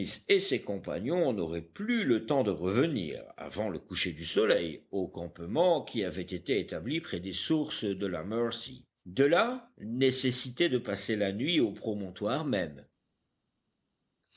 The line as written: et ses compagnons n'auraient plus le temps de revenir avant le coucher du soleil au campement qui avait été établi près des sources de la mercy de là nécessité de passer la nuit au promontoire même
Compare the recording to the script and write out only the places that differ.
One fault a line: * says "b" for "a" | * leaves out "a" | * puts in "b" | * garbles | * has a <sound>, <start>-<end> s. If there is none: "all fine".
all fine